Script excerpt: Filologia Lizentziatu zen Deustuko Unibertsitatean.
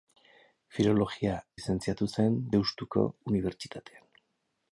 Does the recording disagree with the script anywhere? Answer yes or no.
no